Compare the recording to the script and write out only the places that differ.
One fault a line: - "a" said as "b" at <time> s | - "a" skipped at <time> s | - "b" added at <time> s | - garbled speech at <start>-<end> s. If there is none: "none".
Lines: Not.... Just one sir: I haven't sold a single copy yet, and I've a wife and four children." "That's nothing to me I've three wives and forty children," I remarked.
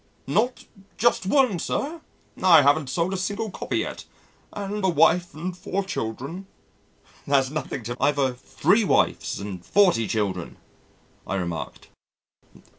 - "I've" skipped at 4.9 s
- "me" skipped at 8.0 s